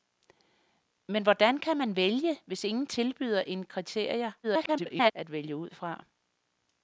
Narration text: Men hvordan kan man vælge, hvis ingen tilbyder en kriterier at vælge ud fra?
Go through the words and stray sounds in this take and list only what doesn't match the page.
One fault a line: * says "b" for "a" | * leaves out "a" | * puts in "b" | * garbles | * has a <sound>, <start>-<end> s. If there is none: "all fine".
* garbles